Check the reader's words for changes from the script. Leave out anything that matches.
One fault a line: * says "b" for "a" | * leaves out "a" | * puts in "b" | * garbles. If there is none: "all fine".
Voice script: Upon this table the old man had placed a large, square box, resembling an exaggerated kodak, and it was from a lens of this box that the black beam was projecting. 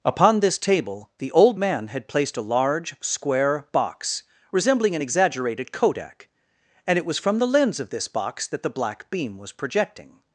* says "the" for "a"